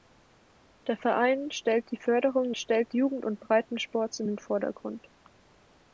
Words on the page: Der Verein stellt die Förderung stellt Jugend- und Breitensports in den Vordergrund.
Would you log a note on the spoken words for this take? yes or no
no